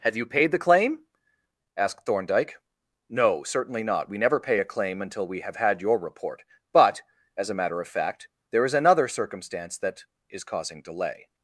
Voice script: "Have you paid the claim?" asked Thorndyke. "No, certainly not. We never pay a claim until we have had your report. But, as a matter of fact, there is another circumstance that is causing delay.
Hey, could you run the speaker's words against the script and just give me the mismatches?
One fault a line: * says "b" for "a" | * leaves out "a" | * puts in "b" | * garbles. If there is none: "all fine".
all fine